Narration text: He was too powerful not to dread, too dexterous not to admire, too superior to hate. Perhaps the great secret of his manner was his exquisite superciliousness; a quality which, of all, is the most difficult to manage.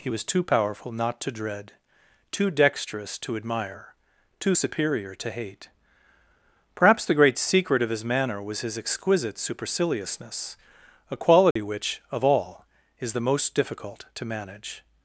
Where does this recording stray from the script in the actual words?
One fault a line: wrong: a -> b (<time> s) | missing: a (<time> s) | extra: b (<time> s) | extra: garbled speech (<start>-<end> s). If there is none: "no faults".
missing: not (3.2 s)